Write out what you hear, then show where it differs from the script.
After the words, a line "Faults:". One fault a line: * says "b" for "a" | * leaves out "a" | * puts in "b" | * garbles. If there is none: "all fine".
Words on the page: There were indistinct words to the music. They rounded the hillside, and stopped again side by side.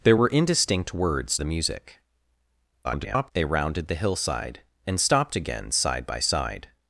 There were indistinct words the music. [garbled] They rounded the hillside, and stopped again side by side.
Faults:
* leaves out "to"
* garbles